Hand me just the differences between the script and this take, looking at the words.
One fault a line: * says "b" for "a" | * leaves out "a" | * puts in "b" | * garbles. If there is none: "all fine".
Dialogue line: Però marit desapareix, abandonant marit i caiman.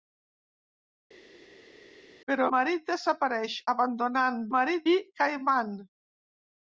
all fine